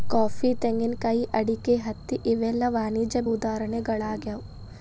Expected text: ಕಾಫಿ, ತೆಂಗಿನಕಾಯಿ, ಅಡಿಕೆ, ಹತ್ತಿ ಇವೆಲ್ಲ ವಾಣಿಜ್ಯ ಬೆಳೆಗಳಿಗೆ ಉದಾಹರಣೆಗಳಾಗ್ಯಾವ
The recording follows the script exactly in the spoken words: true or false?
false